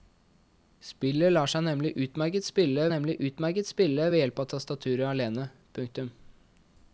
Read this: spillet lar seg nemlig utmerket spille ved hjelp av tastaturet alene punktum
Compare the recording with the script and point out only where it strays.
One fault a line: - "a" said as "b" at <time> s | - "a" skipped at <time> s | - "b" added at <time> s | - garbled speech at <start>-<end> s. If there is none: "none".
- "nemlig utmerket spille" added at 2.9 s